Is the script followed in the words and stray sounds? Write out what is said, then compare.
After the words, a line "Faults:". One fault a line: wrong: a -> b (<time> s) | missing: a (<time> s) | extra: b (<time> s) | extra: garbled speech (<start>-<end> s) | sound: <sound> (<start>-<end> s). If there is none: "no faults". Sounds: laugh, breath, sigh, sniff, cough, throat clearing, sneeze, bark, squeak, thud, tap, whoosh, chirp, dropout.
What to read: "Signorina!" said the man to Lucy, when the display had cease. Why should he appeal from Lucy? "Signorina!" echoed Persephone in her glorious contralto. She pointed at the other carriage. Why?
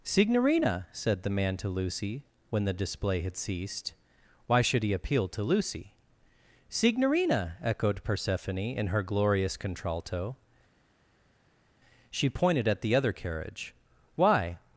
"Signorina!" said the man to Lucy, when the display had ceased. Why should he appeal to Lucy? "Signorina!" echoed Persephone in her glorious contralto. She pointed at the other carriage. Why?
Faults:
wrong: cease -> ceased (3.4 s)
wrong: from -> to (5.3 s)